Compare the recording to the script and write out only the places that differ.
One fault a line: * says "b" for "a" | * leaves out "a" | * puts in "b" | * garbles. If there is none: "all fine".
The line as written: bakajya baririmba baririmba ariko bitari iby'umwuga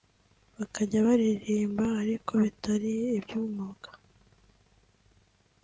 * leaves out "baririmba"